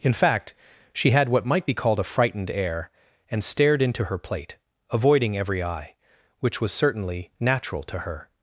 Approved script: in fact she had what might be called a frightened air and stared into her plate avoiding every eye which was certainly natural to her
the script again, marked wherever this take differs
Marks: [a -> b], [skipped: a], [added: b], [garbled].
in fact she had what might be called a frightened air and stared into her plate avoiding every eye which was certainly natural to her